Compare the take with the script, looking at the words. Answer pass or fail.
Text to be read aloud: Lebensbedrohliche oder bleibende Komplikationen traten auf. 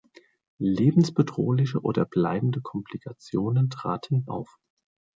pass